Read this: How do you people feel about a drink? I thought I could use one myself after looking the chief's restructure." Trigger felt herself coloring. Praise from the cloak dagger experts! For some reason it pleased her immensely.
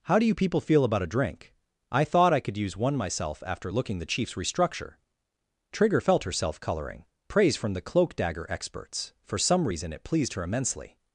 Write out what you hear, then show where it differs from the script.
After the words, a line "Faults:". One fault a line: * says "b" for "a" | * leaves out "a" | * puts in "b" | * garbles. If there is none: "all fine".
How do you people feel about a drink? I thought I could use one myself after looking the chief's restructure." Trigger felt herself coloring. Praise from the cloak dagger experts! For some reason it pleased her immensely.
Faults:
all fine